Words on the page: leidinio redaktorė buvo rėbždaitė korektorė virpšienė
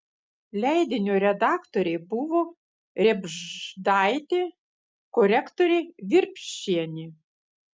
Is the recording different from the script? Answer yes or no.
no